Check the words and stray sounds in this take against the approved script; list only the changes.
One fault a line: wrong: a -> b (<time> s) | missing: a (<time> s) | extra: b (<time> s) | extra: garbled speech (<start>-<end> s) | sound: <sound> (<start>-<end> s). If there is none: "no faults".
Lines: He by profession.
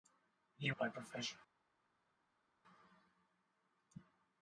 no faults